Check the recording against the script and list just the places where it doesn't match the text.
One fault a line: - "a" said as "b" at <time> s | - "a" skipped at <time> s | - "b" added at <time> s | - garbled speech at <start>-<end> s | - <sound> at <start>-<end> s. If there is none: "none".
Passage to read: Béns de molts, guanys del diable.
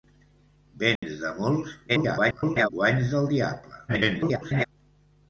- dropout at 1.0-1.0 s
- garbled speech at 1.9-2.7 s
- garbled speech at 3.9-4.7 s